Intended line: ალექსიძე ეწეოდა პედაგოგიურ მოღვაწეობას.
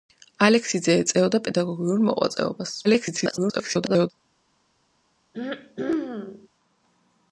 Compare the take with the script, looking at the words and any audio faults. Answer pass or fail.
fail